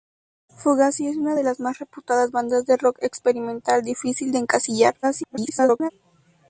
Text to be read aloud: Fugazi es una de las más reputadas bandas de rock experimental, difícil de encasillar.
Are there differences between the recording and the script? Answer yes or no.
yes